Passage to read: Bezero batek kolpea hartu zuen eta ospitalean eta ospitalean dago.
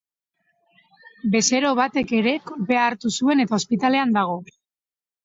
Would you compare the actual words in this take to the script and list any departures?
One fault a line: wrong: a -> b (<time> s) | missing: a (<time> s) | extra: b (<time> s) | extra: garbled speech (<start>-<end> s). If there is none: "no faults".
extra: ere (2.2 s)
missing: eta ospitalean (4.2 s)